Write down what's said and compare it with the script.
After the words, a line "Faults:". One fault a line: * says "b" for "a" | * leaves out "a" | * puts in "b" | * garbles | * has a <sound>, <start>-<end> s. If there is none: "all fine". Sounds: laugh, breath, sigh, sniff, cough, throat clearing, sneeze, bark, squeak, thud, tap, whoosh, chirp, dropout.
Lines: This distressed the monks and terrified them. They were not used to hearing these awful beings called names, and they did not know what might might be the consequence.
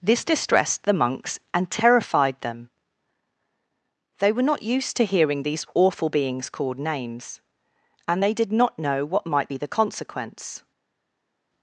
This distressed the monks and terrified them. They were not used to hearing these awful beings called names, and they did not know what might be the consequence.
Faults:
* leaves out "might"